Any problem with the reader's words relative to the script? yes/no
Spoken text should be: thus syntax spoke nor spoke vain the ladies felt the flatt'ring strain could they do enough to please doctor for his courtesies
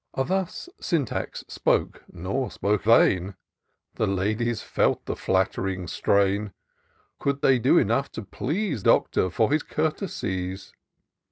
no